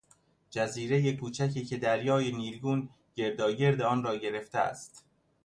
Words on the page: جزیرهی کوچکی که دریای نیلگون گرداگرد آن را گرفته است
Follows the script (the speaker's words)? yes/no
yes